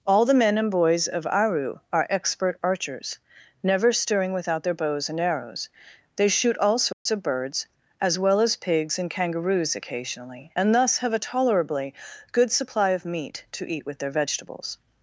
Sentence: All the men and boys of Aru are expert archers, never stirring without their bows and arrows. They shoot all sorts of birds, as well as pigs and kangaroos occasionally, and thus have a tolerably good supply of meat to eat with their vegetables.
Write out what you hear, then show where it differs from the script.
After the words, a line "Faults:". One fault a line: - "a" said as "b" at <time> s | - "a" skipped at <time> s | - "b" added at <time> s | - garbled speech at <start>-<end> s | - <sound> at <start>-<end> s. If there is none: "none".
All the men and boys of Aru are expert archers, never stirring without their bows and arrows. They shoot all sorts of birds, as well as pigs and kangaroos occasionally, and thus have a tolerably good supply of meat to eat with their vegetables.
Faults:
- dropout at 6.9-7.1 s